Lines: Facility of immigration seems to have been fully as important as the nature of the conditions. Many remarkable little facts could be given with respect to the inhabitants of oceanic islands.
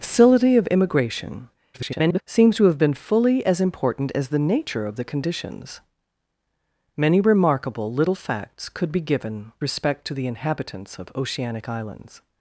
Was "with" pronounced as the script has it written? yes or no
no